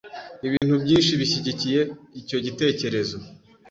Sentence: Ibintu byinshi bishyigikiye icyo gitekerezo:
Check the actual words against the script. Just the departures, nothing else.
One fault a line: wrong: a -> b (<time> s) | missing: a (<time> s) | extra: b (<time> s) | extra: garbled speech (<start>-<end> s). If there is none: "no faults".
no faults